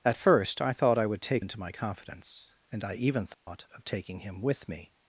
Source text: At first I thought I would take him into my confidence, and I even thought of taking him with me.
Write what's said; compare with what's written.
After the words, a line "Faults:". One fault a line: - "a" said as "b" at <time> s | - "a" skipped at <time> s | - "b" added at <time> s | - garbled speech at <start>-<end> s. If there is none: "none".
At first I thought I would take into my confidence, and I even thought of taking him with me.
Faults:
- "him" skipped at 1.4 s